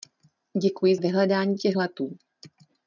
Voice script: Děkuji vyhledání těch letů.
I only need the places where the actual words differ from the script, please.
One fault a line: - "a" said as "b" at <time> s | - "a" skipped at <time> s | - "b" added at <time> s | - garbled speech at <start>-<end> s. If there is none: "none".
none